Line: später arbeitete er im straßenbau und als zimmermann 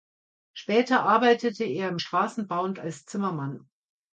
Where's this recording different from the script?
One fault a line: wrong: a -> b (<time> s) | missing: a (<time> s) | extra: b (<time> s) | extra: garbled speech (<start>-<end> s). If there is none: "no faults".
no faults